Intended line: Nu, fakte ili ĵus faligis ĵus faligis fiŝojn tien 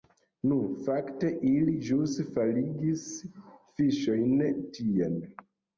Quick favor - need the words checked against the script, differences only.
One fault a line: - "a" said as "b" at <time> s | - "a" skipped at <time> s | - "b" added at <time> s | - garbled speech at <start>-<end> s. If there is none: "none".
- "ĵus faligis" skipped at 3.1 s